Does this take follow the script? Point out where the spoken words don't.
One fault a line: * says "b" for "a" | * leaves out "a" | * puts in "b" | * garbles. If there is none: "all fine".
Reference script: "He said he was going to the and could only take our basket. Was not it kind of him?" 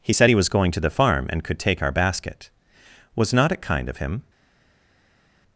* puts in "farm"
* leaves out "only"